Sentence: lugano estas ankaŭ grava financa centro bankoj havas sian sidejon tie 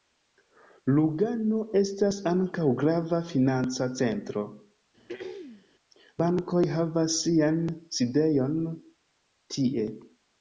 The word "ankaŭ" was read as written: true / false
true